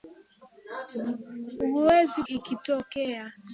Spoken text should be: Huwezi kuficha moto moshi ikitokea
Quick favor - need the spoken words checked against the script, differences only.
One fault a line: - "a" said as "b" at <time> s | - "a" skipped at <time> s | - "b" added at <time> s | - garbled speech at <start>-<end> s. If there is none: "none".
- "kuficha moto moshi" skipped at 2.2 s